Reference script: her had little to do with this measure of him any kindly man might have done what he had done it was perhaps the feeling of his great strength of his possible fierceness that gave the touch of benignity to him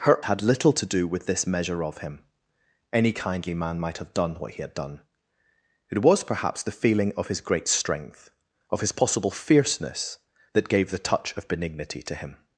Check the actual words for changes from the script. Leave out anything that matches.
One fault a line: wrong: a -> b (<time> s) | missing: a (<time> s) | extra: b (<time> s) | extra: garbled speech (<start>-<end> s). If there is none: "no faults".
no faults